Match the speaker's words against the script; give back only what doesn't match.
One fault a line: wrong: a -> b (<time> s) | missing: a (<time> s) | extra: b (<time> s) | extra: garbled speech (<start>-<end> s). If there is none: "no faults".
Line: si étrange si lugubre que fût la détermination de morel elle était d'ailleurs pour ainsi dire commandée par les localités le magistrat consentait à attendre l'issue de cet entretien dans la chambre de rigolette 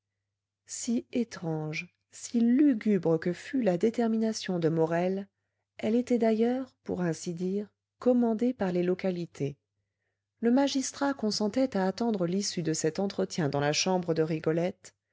no faults